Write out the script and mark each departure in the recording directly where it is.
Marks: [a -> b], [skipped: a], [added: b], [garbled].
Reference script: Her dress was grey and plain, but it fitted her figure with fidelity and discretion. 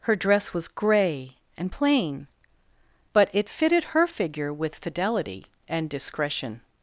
Her dress was grey and plain, but it fitted her figure with fidelity and discretion.